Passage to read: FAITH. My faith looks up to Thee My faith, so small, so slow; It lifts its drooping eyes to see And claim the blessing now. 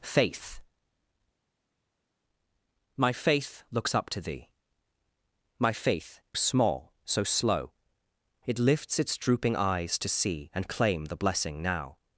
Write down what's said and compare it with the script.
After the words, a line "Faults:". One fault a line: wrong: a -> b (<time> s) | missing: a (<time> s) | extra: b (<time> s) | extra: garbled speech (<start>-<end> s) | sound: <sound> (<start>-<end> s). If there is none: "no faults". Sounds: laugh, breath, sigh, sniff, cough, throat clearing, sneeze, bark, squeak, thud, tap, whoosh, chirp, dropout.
FAITH. My faith looks up to Thee My faith, small, so slow; It lifts its drooping eyes to see And claim the blessing now.
Faults:
missing: so (6.2 s)